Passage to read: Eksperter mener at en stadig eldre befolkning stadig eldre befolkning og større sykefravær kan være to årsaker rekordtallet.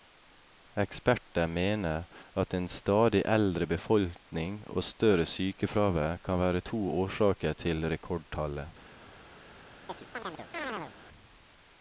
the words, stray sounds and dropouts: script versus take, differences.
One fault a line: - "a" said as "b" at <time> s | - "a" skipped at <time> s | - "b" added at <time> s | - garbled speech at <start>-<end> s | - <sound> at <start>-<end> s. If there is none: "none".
- "stadig eldre befolkning" skipped at 4.5 s
- "til" added at 7.6 s
- chirp at 9.9-10.9 s